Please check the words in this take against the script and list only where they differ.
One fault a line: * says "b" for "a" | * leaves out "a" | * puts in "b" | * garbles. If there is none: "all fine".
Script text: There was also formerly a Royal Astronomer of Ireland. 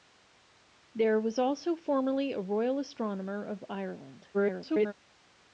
* garbles